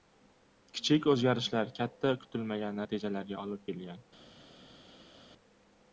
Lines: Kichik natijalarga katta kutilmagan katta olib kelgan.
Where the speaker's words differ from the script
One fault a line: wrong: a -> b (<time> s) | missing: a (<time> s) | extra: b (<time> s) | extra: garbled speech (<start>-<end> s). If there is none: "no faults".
wrong: natijalarga -> o‘zgarishlar (1.1 s)
wrong: katta -> natijalarga (2.8 s)